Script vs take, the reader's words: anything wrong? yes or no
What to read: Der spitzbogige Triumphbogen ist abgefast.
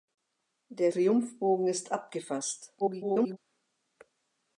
yes